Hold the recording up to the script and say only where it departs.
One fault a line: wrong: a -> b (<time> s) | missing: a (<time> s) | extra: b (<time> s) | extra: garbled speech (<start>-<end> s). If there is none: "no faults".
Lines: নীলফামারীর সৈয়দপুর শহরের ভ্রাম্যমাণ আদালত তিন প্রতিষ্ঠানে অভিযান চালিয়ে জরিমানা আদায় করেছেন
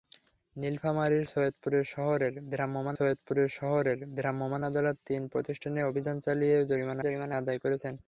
extra: সৈয়দপুর শহরের ভ্রাম্যমাণ (2.9 s)
extra: জরিমানা (7.0 s)